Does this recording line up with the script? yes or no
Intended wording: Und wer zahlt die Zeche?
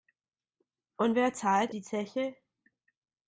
yes